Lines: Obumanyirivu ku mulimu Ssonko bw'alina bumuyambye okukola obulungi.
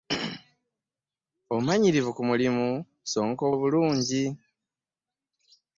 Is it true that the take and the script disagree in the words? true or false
true